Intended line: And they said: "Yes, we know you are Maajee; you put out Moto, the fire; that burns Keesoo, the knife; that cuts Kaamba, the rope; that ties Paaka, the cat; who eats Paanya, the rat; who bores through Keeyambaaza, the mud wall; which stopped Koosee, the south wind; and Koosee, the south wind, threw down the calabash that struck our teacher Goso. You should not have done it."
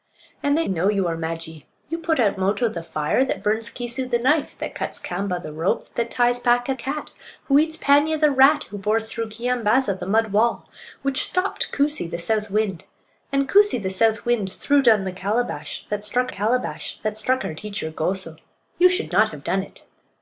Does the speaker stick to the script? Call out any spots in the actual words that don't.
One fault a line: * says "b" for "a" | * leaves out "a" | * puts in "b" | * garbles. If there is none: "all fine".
* leaves out "said Yes we"
* leaves out "the"
* puts in "calabash that struck"